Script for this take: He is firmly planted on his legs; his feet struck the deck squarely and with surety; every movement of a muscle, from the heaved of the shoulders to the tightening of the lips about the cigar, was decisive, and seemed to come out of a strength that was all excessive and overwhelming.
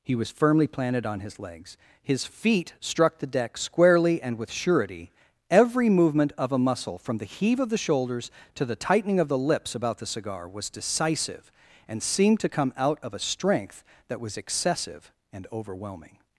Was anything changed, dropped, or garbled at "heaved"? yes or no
yes